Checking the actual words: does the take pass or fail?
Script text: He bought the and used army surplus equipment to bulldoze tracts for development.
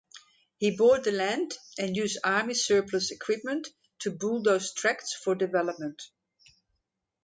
fail